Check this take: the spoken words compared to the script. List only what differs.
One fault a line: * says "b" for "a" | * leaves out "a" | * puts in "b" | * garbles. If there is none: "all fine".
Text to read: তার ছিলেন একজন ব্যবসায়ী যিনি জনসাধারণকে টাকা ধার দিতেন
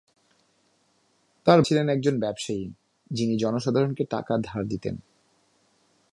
all fine